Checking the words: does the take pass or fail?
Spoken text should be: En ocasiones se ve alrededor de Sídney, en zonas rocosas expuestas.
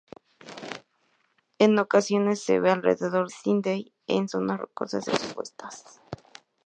fail